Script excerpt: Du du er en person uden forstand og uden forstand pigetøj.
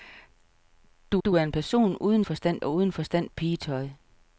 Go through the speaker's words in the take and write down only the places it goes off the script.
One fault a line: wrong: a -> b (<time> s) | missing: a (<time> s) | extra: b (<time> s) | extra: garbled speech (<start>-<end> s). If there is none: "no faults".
no faults